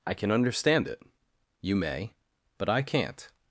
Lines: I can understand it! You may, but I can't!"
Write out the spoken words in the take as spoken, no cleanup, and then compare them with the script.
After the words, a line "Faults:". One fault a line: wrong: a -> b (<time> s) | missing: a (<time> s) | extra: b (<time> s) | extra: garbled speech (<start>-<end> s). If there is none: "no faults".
I can understand it! You may, but I can't!"
Faults:
no faults